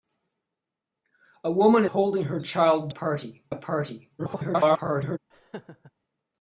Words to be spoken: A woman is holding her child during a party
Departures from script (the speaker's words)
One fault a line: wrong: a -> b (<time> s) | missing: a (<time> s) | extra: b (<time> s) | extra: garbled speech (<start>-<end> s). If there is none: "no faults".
missing: is (1.9 s)
wrong: during -> party (2.9 s)
extra: garbled speech (4.2-5.2 s)